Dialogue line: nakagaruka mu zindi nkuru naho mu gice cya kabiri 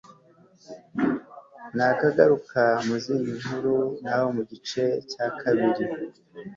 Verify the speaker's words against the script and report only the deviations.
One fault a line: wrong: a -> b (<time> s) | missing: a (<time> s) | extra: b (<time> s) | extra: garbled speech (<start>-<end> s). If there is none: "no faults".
no faults